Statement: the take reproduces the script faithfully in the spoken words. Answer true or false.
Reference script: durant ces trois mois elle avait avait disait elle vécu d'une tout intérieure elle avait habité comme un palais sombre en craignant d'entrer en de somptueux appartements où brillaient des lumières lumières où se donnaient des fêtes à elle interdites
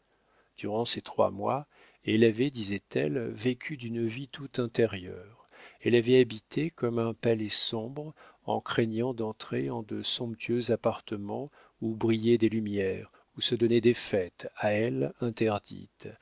false